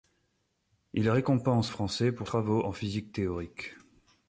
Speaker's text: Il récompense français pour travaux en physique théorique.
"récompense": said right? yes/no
yes